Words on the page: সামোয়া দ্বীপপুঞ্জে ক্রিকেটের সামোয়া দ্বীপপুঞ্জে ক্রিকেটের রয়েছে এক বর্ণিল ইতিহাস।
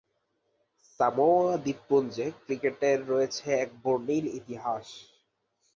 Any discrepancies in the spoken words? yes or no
yes